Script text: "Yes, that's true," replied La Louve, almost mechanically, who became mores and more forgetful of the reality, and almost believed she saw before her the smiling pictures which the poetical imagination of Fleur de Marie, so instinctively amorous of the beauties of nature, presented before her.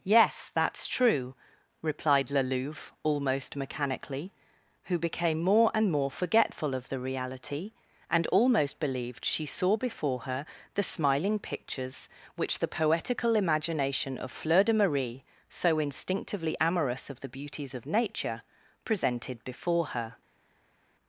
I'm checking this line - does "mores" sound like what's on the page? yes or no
no